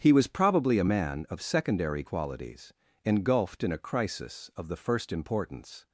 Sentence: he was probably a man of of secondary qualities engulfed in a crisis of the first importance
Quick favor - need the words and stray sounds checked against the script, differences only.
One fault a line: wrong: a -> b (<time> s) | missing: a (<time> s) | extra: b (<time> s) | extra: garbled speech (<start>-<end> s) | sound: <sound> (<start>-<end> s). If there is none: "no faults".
missing: of (1.4 s)